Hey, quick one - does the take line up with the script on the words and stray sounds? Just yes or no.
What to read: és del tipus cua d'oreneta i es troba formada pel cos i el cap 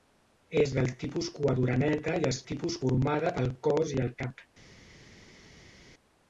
no